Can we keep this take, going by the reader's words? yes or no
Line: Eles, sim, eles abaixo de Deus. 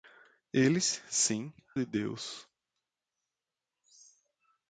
no